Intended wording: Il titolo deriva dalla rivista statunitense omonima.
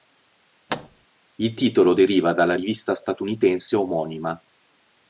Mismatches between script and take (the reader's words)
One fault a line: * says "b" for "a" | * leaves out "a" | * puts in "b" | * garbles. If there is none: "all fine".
all fine